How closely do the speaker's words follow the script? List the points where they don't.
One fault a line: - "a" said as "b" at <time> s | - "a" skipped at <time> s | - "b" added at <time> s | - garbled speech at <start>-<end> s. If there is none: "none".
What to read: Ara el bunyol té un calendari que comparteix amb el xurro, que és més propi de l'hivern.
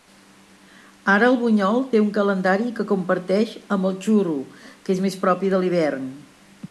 none